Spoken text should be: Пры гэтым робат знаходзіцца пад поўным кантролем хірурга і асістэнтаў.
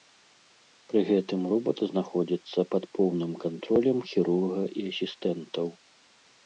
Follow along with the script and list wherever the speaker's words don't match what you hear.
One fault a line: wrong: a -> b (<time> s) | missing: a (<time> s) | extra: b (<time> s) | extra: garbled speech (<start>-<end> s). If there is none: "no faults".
no faults